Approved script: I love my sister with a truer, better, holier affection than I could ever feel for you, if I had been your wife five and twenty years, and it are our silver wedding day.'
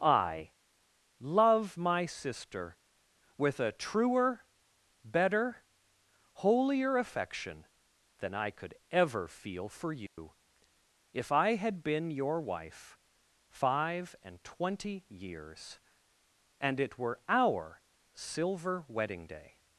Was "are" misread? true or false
true